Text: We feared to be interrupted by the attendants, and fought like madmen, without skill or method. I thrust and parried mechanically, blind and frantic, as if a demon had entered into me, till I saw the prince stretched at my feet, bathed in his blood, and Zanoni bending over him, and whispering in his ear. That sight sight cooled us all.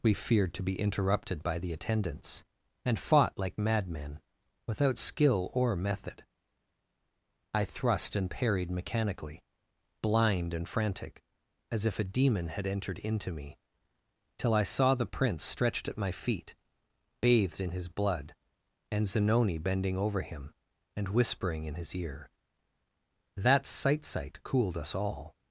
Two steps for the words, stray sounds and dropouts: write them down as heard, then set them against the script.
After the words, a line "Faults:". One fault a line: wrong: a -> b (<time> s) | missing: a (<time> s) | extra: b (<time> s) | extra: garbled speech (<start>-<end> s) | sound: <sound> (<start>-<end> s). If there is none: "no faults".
We feared to be interrupted by the attendants, and fought like madmen, without skill or method. I thrust and parried mechanically, blind and frantic, as if a demon had entered into me, till I saw the prince stretched at my feet, bathed in his blood, and Zanoni bending over him, and whispering in his ear. That sight sight cooled us all.
Faults:
no faults